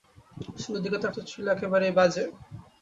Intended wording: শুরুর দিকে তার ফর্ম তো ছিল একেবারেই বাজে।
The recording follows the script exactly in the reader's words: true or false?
false